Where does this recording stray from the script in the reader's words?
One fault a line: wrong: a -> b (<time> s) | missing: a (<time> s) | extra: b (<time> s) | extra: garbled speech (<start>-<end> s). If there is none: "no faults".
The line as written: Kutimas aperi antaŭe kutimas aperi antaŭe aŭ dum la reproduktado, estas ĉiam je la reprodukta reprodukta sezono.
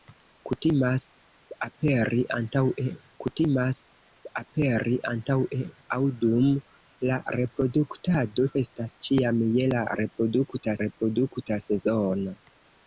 no faults